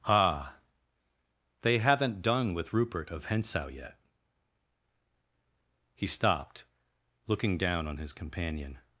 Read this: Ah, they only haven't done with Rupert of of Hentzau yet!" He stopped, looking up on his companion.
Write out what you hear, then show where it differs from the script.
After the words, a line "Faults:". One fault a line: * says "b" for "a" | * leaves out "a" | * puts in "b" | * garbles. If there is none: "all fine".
Ah, they haven't done with Rupert of Hentzau yet!" He stopped, looking down on his companion.
Faults:
* leaves out "only"
* leaves out "of"
* says "down" for "up"